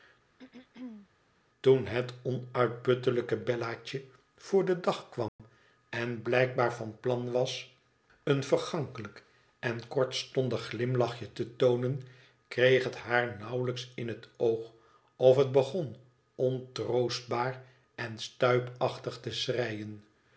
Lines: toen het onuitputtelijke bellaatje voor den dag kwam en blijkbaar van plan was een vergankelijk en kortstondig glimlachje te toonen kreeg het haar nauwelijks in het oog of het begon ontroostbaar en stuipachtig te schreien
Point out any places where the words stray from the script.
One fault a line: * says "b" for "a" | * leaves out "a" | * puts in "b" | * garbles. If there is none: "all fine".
all fine